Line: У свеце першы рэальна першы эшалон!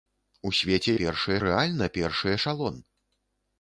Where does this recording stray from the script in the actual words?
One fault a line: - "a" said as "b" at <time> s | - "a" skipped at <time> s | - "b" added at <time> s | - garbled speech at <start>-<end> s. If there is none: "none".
none